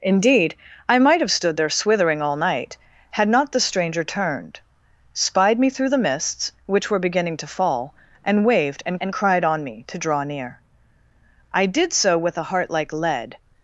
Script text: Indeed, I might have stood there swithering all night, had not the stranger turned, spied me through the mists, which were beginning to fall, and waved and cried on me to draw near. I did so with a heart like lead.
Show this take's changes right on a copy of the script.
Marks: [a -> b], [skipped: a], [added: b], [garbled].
Indeed, I might have stood there swithering all night, had not the stranger turned, spied me through the mists, which were beginning to fall, and waved and [added: and] cried on me to draw near. I did so with a heart like lead.